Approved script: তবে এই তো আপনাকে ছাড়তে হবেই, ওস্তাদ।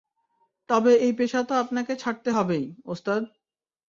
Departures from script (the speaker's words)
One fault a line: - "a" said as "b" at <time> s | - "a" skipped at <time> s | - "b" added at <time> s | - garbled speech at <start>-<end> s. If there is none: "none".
- "পেশা" added at 1.1 s